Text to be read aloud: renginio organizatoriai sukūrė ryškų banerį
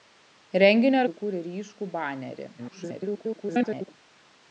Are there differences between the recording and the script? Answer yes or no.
yes